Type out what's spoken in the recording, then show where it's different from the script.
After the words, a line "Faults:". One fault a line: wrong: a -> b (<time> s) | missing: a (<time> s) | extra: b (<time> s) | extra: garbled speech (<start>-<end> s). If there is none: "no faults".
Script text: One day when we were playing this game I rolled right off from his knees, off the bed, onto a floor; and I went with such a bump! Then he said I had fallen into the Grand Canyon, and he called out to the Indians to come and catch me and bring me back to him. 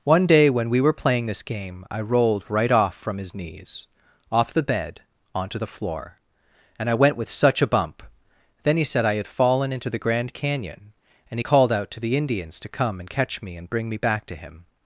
One day when we were playing this game I rolled right off from his knees, off the bed, onto the floor; and I went with such a bump! Then he said I had fallen into the Grand Canyon, and he called out to the Indians to come and catch me and bring me back to him.
Faults:
wrong: a -> the (5.6 s)